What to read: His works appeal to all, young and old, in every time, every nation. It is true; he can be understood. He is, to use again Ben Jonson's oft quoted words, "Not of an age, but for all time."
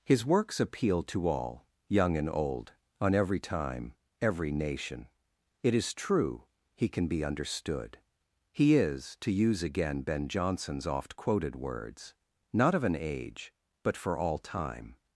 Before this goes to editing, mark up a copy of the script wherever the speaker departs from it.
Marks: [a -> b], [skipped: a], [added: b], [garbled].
His works appeal to all, young and old, [in -> on] every time, every nation. It is true; he can be understood. He is, to use again Ben Jonson's oft quoted words, "Not of an age, but for all time."